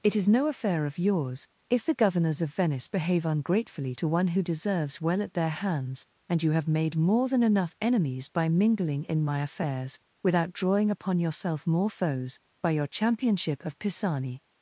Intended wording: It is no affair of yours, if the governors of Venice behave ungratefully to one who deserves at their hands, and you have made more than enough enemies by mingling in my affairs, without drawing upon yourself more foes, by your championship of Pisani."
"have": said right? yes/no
yes